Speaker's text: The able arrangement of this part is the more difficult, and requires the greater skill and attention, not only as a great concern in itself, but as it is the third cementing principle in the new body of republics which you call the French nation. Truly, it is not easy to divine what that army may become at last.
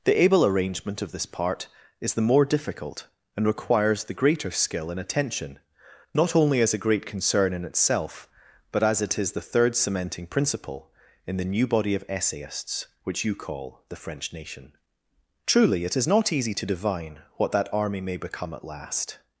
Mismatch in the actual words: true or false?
true